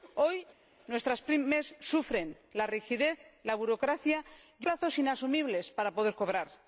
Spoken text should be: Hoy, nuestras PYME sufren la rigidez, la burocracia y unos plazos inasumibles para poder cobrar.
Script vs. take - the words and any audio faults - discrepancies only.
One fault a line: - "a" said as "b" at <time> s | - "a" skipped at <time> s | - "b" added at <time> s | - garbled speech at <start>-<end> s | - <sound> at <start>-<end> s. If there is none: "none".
- "unos" skipped at 4.7 s